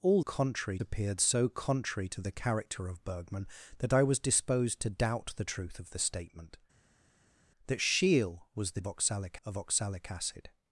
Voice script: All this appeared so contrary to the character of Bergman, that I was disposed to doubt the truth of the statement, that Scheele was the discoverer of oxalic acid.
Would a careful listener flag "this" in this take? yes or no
yes